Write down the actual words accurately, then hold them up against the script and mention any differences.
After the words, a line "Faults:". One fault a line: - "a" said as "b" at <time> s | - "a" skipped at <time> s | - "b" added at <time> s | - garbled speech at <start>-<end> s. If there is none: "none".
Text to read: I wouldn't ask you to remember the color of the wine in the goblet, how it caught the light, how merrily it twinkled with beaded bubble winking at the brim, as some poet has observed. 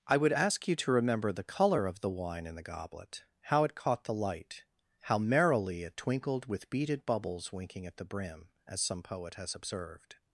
I would ask you to remember the color of the wine in the goblet, how it caught the light, how merrily it twinkled with beaded bubbles winking at the brim, as some poet has observed.
Faults:
- "wouldn't" said as "would" at 0.2 s
- "bubble" said as "bubbles" at 7.1 s